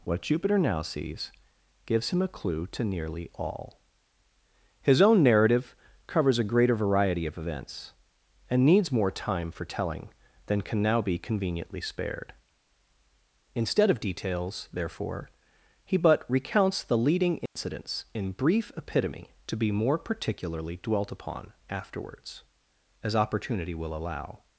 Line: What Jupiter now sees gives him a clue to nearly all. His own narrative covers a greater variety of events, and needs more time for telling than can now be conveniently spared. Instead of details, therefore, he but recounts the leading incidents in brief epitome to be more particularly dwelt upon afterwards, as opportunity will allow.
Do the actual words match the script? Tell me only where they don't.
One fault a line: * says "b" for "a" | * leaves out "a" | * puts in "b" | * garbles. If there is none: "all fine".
all fine